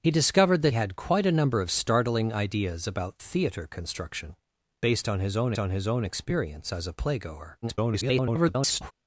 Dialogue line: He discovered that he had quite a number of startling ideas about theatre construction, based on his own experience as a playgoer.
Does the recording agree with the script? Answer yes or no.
no